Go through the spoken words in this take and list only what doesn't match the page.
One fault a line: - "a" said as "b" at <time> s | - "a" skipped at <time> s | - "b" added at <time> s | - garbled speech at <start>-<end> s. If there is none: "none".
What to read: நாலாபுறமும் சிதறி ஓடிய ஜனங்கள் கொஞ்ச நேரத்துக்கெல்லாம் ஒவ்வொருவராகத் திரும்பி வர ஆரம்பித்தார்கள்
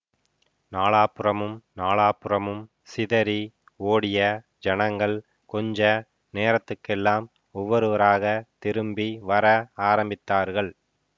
- "நாலாபுறமும்" added at 1.8 s